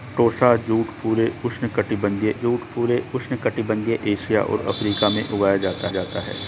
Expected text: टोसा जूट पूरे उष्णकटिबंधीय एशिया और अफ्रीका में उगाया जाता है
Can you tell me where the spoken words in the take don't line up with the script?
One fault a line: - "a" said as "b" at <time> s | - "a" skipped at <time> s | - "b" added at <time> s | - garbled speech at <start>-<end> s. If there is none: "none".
- "जूट पूरे उष्णकटिबंधीय" added at 2.3 s
- "जाता" added at 5.9 s